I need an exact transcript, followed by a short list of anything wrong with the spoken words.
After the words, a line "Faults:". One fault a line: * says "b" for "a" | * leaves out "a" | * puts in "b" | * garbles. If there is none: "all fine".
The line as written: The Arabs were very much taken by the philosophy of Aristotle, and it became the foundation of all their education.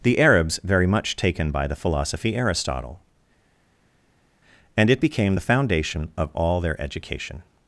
The Arabs very much taken by the philosophy Aristotle, and it became the foundation of all their education.
Faults:
* leaves out "were"
* leaves out "of"